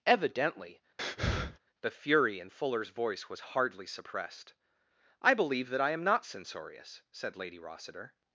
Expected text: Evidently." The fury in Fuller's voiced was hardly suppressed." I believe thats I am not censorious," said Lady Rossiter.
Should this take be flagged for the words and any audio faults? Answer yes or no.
yes